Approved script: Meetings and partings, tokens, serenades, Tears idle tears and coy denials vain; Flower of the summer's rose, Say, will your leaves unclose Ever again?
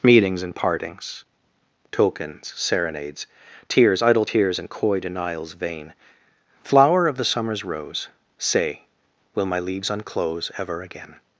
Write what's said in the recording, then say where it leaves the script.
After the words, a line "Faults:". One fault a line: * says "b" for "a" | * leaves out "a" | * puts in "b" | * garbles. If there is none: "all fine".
Meetings and partings, tokens, serenades, Tears idle tears and coy denials vain; Flower of the summer's rose, Say, will my leaves unclose Ever again?
Faults:
* says "my" for "your"